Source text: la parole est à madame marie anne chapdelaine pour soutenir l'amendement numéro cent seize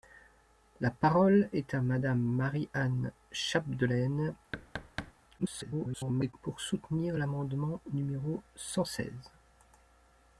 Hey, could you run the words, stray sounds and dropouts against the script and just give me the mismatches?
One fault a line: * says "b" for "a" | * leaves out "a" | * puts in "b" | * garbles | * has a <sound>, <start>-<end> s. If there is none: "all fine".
* has a thud, 4.5-5.1 s
* garbles